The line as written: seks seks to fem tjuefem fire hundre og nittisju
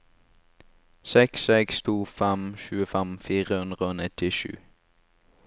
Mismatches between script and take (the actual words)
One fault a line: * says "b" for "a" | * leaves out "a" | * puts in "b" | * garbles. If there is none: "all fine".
all fine